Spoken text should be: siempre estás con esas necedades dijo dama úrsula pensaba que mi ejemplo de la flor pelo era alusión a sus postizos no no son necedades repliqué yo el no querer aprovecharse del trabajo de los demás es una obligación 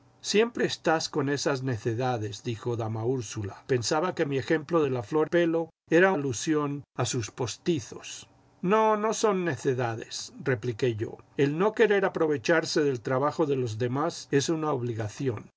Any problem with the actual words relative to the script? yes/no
no